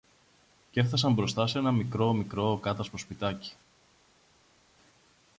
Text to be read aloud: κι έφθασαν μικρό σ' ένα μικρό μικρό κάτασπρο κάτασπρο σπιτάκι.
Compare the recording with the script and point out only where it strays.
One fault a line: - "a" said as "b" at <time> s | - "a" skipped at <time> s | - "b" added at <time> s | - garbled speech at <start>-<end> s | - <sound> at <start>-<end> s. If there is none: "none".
- "μικρό" said as "μπροστά" at 1.1 s
- "κάτασπρο" skipped at 3.0 s